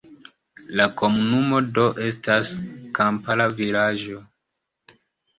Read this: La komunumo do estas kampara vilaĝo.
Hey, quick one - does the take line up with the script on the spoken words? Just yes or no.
yes